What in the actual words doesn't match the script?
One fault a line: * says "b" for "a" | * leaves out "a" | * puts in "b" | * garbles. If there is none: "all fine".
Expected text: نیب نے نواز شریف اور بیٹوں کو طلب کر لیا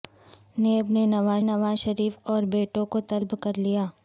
* puts in "نواز"